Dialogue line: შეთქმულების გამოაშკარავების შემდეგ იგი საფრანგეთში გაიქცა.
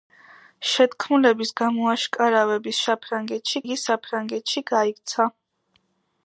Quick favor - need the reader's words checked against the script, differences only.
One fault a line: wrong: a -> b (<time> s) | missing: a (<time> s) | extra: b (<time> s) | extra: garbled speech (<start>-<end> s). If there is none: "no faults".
wrong: შემდეგ -> საფრანგეთში (2.9 s)